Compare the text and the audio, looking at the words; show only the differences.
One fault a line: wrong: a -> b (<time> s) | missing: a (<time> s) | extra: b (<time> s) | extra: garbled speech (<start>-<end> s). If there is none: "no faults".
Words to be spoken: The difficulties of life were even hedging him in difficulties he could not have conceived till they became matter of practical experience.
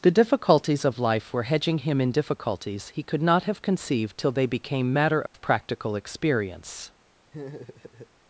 missing: even (1.4 s)